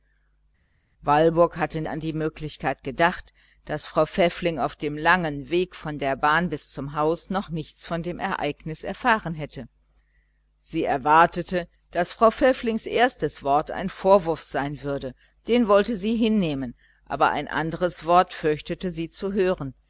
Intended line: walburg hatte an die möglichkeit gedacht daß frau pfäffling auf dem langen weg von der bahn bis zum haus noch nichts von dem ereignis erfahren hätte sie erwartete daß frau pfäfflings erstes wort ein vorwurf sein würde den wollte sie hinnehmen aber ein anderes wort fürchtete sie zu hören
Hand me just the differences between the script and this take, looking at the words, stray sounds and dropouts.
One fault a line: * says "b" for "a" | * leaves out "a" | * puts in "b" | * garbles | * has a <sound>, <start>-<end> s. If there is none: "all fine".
all fine